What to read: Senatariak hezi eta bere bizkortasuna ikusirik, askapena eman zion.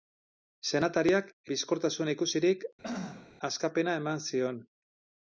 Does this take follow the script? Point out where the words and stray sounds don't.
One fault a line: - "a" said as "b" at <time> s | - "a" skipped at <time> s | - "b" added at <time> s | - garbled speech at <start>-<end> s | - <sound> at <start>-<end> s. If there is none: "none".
- "hezi eta bere" skipped at 1.3 s
- throat clearing at 2.8-3.3 s